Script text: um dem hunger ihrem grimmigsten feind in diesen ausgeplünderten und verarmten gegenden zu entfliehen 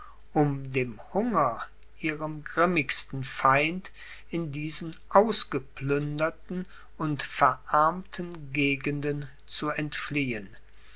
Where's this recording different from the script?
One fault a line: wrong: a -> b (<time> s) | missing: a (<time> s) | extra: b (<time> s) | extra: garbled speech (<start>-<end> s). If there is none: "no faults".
no faults